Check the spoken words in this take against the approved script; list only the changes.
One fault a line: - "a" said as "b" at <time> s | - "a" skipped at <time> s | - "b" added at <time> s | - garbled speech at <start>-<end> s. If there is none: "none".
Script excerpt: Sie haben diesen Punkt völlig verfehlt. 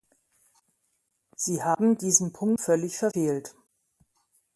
none